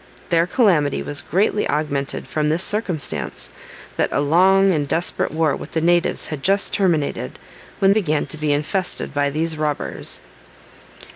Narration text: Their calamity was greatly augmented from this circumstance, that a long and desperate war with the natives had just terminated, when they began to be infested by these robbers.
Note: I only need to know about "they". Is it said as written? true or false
false